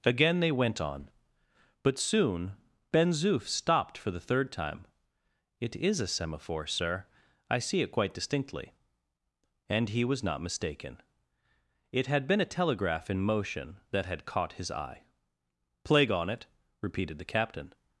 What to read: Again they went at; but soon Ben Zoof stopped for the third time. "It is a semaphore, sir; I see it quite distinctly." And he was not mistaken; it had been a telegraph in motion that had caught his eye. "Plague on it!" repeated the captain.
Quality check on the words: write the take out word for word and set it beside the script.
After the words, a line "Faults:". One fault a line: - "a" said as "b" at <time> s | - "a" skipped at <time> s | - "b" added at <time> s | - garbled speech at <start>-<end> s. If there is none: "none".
Again they went on; but soon Ben Zoof stopped for the third time. "It is a semaphore, sir; I see it quite distinctly." And he was not mistaken; it had been a telegraph in motion that had caught his eye. "Plague on it!" repeated the captain.
Faults:
- "at" said as "on" at 0.8 s